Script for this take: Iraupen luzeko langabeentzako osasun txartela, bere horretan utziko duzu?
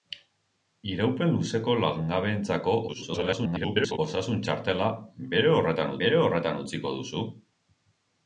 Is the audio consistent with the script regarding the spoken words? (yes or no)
no